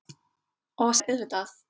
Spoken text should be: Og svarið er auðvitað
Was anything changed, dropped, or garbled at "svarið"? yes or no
yes